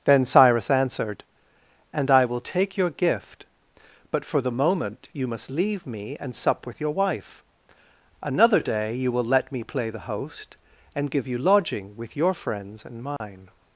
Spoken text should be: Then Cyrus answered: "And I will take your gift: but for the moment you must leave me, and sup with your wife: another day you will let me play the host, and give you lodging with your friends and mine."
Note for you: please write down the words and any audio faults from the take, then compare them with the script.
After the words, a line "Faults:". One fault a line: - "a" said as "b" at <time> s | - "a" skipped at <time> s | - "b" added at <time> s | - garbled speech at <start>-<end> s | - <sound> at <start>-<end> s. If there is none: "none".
Then Cyrus answered: "And I will take your gift: but for the moment you must leave me, and sup with your wife: another day you will let me play the host, and give you lodging with your friends and mine."
Faults:
- dropout at 13.2-13.2 s